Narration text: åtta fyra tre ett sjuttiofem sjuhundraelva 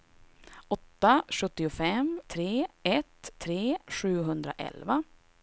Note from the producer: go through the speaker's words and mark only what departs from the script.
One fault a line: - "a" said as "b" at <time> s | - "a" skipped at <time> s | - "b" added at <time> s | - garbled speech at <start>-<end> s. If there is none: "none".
- "fyra" said as "sjuttiofem" at 1.3 s
- "sjuttiofem" said as "tre" at 3.4 s